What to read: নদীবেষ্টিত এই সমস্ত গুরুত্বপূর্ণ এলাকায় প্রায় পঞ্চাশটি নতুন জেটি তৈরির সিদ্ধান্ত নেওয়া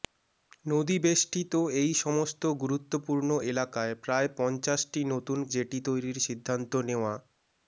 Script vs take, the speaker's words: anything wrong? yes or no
no